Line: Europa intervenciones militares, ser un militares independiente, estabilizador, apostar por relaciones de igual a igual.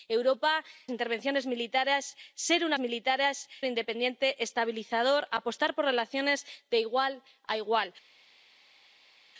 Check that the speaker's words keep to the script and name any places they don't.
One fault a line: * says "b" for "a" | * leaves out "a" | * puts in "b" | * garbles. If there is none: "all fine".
all fine